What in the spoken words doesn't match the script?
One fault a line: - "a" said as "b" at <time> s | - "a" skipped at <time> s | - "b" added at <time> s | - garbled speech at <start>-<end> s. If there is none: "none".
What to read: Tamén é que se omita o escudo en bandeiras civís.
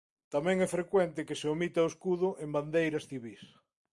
- "frecuente" added at 0.8 s